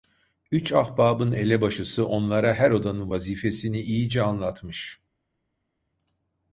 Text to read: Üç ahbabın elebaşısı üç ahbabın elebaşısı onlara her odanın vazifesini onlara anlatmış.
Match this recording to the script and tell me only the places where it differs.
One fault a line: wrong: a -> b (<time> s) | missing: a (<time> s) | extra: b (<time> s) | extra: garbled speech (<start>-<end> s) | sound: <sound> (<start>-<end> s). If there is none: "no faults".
missing: üç ahbabın elebaşısı (2.1 s)
wrong: onlara -> iyice (3.8 s)